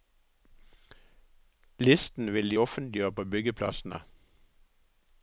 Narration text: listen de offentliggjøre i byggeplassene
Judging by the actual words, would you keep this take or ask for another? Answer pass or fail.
fail